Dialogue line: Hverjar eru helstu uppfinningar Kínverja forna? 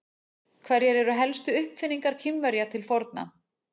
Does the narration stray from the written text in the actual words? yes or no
yes